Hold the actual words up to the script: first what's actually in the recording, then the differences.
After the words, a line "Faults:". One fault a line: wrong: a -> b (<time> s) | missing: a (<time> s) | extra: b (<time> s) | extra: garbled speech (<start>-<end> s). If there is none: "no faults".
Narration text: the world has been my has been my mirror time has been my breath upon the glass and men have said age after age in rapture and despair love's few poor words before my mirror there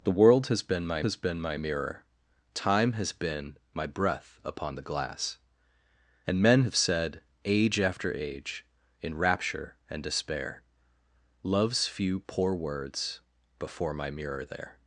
the world has been my has been my mirror time has been my breath upon the glass and men have said age after age in rapture and despair love's few poor words before my mirror there
Faults:
no faults